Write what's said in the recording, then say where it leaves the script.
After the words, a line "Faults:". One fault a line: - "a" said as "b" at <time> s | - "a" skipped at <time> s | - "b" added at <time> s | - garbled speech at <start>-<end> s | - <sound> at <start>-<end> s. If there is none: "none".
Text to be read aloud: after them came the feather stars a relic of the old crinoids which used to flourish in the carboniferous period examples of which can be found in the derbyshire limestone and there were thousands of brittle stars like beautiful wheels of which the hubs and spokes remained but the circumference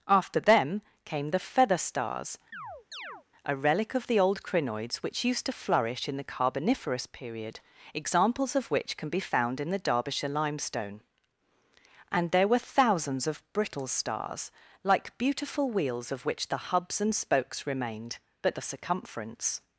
after them came the feather stars a relic of the old crinoids which used to flourish in the carboniferous period examples of which can be found in the derbyshire limestone and there were thousands of brittle stars like beautiful wheels of which the hubs and spokes remained but the circumference
Faults:
- chirp at 2.5-3.2 s